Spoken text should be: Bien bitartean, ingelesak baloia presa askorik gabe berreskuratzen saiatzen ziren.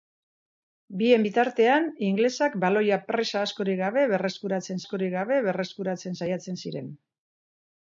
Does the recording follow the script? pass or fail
fail